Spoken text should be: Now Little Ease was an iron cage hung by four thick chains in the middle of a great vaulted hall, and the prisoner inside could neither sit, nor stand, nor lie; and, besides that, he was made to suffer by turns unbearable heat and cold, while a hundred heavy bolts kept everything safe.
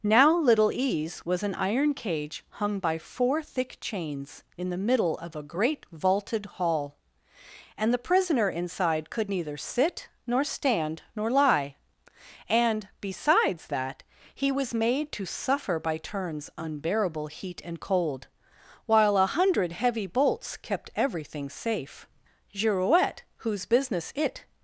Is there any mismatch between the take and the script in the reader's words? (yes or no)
yes